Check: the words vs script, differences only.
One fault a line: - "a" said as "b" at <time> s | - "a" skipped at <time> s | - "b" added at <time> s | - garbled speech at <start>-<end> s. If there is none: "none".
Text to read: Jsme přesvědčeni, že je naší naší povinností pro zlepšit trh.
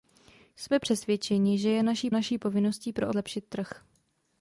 none